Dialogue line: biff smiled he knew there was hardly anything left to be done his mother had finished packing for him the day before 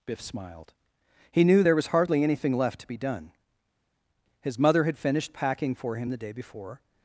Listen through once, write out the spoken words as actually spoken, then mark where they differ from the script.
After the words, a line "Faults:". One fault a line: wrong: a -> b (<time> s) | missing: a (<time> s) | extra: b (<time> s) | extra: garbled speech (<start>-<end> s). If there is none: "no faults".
biff smiled he knew there was hardly anything left to be done his mother had finished packing for him the day before
Faults:
no faults